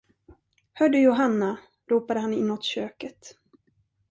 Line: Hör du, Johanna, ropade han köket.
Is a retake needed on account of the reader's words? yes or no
yes